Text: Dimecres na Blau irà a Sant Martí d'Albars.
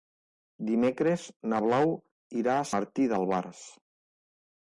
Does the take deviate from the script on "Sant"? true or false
true